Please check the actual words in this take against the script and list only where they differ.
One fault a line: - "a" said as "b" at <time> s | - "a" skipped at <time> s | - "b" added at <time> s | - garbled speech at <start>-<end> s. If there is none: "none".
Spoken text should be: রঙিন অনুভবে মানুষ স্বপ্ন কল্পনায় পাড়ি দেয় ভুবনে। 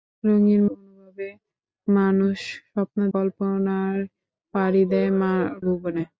none